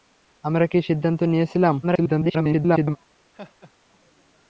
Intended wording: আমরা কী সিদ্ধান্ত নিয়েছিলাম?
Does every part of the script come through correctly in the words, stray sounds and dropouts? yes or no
no